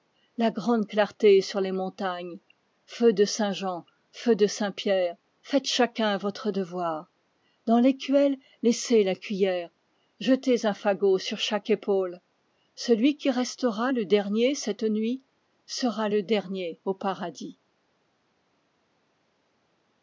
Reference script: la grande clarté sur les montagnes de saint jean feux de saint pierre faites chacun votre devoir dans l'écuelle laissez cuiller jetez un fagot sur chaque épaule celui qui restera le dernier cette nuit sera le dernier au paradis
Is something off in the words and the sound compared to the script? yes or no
yes